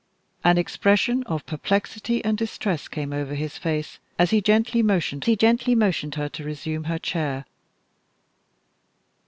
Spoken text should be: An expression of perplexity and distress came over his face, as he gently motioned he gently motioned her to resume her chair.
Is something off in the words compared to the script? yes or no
no